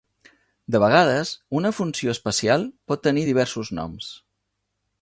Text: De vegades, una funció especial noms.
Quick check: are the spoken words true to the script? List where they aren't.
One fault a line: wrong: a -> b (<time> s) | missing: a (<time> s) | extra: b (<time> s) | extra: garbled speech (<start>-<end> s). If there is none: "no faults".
extra: pot tenir diversos (2.9 s)